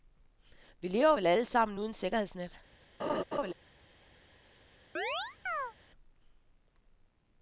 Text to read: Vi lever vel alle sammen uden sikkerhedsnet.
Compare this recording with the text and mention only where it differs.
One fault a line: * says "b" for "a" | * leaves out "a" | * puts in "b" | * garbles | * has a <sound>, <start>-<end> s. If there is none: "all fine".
* has a laugh, 3.0-3.5 s
* has a chirp, 5.0-5.7 s